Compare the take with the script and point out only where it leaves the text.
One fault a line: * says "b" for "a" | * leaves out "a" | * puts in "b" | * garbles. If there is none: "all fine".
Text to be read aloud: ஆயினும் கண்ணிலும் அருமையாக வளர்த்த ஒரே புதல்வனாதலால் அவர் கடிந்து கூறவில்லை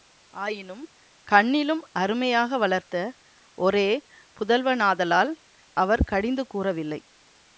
all fine